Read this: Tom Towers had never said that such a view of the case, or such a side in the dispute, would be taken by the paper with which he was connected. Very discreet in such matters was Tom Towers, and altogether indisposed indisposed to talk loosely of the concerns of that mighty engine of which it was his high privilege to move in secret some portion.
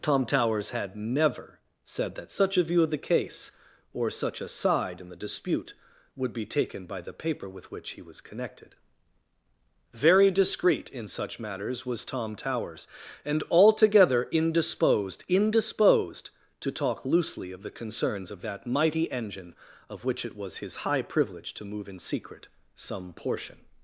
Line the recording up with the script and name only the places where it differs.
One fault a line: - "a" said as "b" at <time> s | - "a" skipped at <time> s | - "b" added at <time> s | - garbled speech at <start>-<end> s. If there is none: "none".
none